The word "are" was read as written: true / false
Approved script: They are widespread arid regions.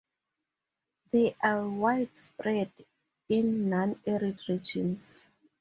true